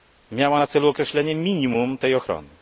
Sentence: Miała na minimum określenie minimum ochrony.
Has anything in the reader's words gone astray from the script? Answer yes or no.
yes